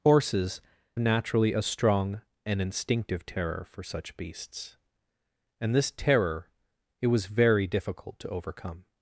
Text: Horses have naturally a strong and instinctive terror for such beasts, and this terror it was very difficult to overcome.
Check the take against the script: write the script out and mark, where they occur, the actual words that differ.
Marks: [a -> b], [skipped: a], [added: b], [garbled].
Horses [skipped: have] naturally a strong and instinctive terror for such beasts, and this terror it was very difficult to overcome.